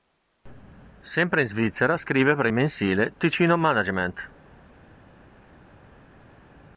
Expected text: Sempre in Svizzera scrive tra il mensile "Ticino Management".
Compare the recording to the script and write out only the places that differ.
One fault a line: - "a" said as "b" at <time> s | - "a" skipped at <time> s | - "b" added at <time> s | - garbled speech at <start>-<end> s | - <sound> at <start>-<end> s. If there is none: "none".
- "tra" said as "per" at 2.4 s